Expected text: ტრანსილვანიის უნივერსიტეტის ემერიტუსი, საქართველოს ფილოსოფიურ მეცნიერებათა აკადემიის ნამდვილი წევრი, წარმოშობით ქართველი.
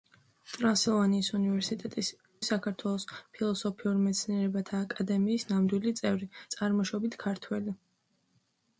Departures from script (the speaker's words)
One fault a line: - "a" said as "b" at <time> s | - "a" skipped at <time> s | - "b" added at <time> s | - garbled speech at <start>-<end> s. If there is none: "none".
- "ემერიტუსი" skipped at 2.1 s